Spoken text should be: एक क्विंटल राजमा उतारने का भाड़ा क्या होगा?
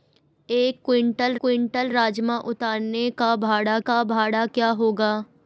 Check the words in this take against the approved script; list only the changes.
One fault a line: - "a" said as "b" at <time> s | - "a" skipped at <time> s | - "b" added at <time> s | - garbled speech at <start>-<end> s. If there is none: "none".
- "क्विंटल" added at 1.4 s
- "का भाड़ा" added at 3.8 s